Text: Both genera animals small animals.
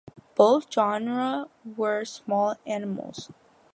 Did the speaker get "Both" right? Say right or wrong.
right